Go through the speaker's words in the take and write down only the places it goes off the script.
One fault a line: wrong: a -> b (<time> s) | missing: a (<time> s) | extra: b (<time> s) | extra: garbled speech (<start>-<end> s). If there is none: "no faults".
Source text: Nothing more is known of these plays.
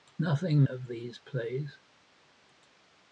missing: more is known (0.6 s)